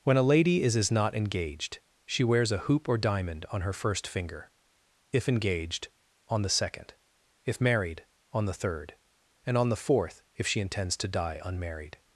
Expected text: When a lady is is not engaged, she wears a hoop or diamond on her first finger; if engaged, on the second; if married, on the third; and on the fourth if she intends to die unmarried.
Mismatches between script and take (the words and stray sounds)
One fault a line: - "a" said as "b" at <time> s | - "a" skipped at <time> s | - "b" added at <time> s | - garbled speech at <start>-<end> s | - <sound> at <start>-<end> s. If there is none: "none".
none